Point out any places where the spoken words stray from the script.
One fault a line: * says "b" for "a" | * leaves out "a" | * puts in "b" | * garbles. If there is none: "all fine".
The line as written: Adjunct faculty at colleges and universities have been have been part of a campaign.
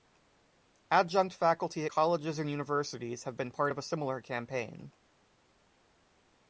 * leaves out "have been"
* puts in "similar"